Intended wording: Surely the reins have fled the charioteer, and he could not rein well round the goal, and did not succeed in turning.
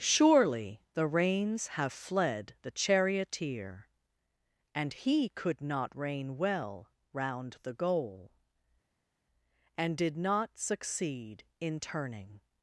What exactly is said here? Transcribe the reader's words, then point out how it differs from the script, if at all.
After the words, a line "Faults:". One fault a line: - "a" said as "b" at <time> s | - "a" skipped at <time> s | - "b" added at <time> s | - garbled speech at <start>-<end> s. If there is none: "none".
Surely the reins have fled the charioteer, and he could not rein well round the goal, and did not succeed in turning.
Faults:
none